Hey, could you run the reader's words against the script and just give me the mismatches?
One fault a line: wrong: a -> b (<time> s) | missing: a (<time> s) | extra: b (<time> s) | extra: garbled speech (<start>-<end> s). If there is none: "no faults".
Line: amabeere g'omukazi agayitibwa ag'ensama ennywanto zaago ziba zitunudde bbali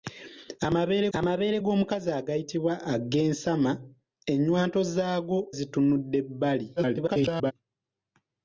extra: amabeere (1.2 s)
missing: ziba (5.4 s)
extra: garbled speech (6.8-7.5 s)